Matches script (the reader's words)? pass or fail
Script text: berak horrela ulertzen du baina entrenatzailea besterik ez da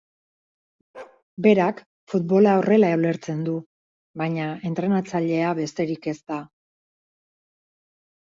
fail